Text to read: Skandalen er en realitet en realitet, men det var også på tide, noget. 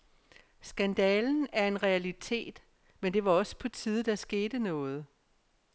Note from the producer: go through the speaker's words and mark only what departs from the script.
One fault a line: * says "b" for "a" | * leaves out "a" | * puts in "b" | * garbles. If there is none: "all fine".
* leaves out "en realitet"
* puts in "der skete"